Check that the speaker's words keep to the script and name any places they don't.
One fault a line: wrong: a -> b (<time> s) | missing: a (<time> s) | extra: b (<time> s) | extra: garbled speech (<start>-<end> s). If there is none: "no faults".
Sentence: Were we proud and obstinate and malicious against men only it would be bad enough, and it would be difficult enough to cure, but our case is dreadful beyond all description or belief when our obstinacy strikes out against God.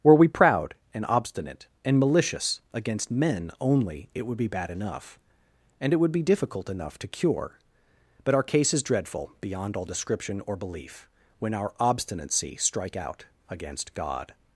wrong: strikes -> strike (12.6 s)